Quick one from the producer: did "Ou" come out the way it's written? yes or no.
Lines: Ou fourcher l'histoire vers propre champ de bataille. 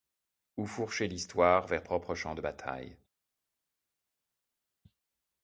yes